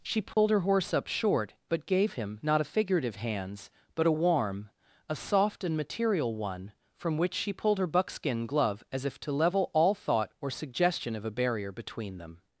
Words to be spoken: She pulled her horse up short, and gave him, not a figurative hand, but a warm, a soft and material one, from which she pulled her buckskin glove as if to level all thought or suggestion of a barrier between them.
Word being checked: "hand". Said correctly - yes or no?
no